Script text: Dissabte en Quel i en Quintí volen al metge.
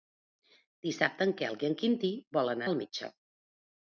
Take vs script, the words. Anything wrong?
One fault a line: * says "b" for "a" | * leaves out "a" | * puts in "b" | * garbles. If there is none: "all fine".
all fine